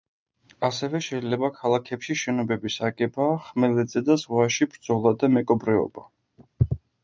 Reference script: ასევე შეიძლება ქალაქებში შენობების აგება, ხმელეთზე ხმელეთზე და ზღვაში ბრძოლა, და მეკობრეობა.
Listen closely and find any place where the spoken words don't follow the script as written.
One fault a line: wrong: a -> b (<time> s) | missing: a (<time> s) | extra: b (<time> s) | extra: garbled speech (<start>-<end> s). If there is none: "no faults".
missing: ხმელეთზე (4.1 s)